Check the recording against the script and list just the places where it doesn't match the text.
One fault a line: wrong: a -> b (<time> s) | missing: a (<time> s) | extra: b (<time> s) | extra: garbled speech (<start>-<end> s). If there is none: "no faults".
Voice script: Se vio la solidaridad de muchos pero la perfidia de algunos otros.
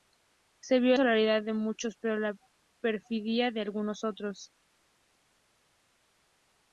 missing: la (0.9 s)